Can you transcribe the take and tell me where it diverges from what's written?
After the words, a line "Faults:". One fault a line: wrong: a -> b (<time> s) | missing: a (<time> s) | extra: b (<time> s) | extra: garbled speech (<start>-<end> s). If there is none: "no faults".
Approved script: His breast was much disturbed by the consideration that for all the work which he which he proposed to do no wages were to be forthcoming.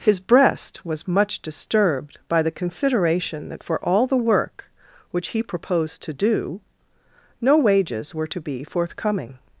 His breast was much disturbed by the consideration that for all the work which he proposed to do no wages were to be forthcoming.
Faults:
missing: which he (5.4 s)